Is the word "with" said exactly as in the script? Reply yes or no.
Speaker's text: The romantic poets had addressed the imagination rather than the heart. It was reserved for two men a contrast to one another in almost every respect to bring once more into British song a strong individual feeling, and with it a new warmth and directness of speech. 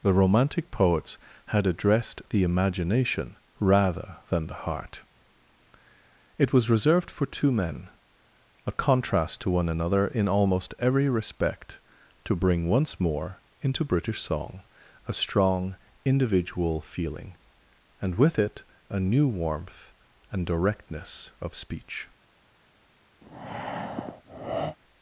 yes